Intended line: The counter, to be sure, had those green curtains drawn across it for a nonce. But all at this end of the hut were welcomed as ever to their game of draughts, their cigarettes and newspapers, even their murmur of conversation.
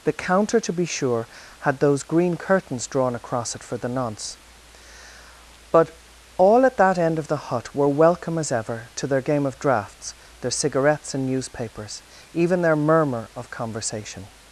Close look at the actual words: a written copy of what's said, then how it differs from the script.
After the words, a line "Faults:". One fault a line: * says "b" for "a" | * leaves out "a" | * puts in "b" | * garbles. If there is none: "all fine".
The counter, to be sure, had those green curtains drawn across it for the nonce. But all at that end of the hut were welcome as ever to their game of draughts, their cigarettes and newspapers, even their murmur of conversation.
Faults:
* says "the" for "a"
* says "that" for "this"
* says "welcome" for "welcomed"